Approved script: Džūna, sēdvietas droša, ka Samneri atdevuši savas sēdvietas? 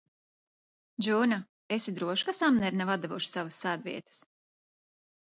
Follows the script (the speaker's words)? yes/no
no